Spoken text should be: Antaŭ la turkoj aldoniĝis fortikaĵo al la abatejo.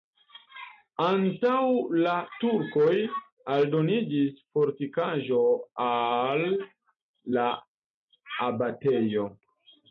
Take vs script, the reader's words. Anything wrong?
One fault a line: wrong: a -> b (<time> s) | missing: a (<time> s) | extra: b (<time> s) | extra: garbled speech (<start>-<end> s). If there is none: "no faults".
no faults